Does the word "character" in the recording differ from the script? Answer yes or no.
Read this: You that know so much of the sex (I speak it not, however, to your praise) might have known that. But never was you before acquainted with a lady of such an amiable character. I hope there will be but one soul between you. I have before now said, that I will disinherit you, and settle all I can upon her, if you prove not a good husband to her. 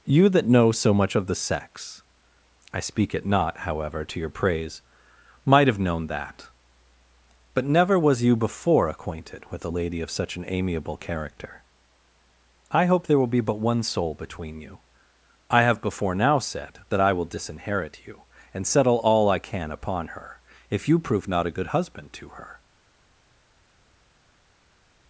no